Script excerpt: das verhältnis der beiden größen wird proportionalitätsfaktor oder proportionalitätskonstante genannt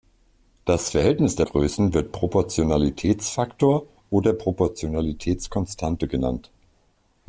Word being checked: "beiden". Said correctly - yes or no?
no